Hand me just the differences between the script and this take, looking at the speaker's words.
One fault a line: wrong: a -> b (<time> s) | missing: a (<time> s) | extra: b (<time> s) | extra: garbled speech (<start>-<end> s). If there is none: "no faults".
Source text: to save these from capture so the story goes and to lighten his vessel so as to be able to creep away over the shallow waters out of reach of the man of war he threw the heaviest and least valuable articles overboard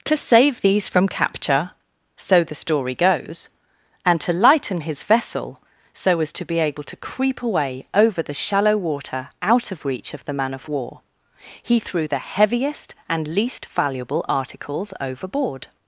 wrong: waters -> water (8.8 s)